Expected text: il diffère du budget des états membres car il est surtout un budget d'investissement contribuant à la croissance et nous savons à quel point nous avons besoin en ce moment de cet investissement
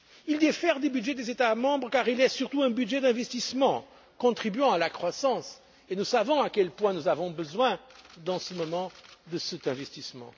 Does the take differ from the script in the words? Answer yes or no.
no